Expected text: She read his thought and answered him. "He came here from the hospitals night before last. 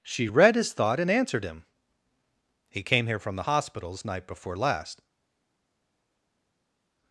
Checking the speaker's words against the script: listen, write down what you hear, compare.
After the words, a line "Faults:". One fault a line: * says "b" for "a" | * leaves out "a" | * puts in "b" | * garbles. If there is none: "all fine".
She read his thought and answered him. "He came here from the hospitals night before last.
Faults:
all fine